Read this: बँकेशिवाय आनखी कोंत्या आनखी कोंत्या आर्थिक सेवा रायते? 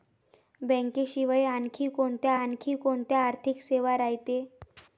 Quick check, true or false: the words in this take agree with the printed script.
true